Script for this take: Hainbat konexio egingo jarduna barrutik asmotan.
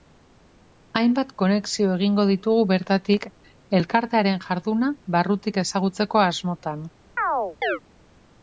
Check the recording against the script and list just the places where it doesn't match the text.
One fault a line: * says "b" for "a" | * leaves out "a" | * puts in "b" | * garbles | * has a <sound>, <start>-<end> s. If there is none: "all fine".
* puts in "ditugu bertatik elkartearen"
* puts in "ezagutzeko"
* has a chirp, 7.2-7.8 s